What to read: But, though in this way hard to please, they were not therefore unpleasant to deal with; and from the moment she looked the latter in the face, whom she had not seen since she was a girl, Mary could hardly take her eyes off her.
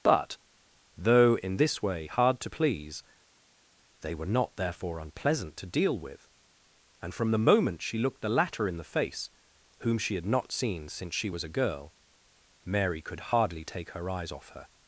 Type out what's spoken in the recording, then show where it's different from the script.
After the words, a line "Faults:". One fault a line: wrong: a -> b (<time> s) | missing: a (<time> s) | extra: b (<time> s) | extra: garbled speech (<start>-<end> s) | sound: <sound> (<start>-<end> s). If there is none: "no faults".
But, though in this way hard to please, they were not therefore unpleasant to deal with; and from the moment she looked the latter in the face, whom she had not seen since she was a girl, Mary could hardly take her eyes off her.
Faults:
no faults